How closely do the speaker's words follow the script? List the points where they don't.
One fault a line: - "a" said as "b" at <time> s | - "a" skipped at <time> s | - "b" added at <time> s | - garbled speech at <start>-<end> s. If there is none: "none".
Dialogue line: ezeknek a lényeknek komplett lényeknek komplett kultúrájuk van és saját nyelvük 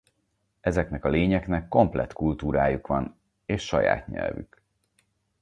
- "lényeknek komplett" skipped at 2.1 s